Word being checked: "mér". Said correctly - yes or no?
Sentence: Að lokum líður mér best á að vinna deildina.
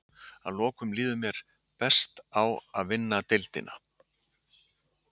yes